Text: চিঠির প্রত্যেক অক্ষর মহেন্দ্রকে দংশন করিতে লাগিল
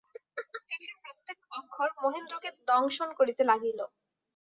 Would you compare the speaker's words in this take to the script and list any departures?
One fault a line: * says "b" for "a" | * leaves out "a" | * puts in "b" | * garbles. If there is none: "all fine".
all fine